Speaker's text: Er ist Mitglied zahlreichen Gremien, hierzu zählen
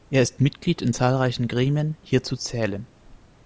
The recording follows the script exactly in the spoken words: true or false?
false